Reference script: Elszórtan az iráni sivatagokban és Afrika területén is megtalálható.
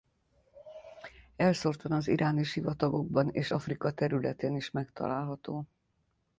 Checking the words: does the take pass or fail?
pass